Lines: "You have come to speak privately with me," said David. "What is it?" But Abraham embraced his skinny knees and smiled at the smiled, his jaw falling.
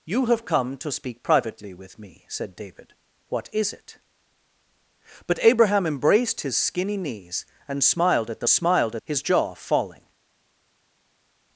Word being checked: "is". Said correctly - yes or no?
yes